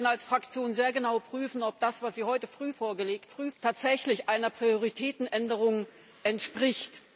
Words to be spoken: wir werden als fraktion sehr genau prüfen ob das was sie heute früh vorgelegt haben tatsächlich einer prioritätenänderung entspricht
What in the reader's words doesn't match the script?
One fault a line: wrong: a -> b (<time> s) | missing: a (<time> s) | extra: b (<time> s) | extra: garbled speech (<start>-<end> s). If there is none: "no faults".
wrong: haben -> früh (3.3 s)